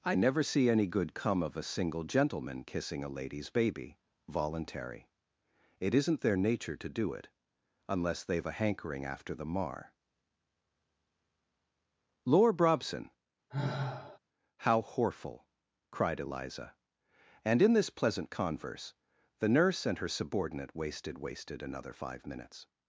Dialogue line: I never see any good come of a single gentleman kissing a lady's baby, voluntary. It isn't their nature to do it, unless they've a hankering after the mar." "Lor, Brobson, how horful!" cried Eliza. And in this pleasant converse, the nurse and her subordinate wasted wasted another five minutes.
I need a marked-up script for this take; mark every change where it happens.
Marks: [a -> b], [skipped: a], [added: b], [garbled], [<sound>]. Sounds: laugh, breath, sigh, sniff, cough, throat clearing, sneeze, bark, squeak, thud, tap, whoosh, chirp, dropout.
I never see any good come of a single gentleman kissing a lady's baby, voluntary. It isn't their nature to do it, unless they've a hankering after the mar." "Lor, Brobson, [sigh] how horful!" cried Eliza. And in this pleasant converse, the nurse and her subordinate wasted wasted another five minutes.